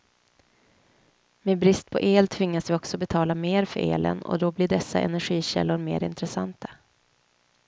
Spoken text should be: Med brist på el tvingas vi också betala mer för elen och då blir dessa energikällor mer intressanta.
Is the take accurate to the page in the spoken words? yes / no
yes